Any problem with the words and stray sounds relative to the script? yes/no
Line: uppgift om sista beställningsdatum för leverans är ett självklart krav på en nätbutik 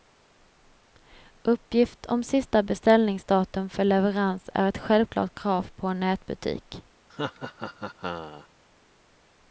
yes